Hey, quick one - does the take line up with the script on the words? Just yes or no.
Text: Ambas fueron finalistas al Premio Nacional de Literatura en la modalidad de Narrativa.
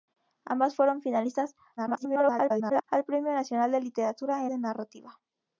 no